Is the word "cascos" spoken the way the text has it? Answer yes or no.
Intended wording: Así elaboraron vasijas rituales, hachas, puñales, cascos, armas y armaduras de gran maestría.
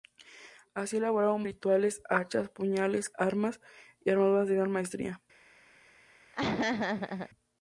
no